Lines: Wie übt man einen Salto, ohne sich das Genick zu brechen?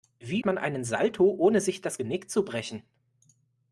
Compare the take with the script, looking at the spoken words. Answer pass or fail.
fail